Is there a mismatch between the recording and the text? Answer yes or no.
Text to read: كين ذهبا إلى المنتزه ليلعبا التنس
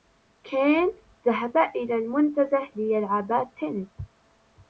no